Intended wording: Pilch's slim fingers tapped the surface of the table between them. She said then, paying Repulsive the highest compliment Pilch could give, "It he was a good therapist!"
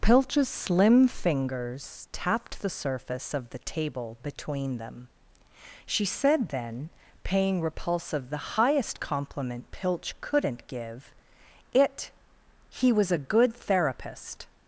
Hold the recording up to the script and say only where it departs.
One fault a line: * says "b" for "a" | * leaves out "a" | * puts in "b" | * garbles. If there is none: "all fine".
* says "couldn't" for "could"